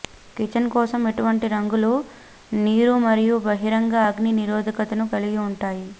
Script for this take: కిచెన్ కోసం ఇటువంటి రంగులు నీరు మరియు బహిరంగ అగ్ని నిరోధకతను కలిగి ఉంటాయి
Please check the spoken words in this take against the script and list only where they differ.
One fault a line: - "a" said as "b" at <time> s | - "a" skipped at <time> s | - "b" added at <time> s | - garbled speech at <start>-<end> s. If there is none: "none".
none